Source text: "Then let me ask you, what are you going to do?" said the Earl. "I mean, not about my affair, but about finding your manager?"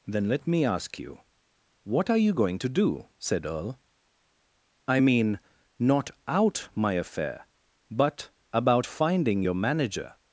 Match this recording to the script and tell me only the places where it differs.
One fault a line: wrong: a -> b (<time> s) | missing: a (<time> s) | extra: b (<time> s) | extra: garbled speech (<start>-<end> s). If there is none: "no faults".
missing: the (3.5 s)
wrong: about -> out (6.3 s)